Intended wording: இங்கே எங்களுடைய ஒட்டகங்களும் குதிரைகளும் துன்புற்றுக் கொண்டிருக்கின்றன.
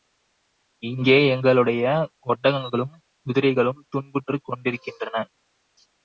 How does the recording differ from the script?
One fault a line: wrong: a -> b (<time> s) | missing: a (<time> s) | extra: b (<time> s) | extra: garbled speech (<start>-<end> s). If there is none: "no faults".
no faults